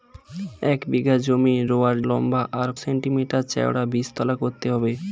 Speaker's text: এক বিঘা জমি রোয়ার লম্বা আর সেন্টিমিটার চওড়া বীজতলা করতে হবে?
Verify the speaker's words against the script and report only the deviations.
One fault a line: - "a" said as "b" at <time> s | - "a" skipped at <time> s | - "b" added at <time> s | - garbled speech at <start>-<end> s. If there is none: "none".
none